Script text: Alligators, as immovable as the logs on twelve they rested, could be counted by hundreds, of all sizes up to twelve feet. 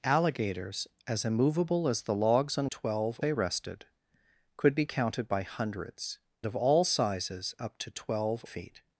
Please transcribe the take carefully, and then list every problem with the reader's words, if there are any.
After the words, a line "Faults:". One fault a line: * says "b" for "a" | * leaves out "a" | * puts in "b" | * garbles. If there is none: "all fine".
Alligators, as immovable as the logs on twelve they rested, could be counted by hundreds, of all sizes up to twelve feet.
Faults:
all fine